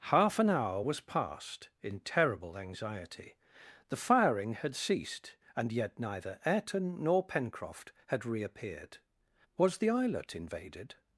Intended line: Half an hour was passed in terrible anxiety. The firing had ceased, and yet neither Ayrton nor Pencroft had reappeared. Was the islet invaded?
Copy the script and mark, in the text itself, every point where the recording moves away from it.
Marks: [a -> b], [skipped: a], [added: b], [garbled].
Half an hour was passed in terrible anxiety. The firing had ceased, and yet neither Ayrton nor Pencroft had reappeared. Was the islet invaded?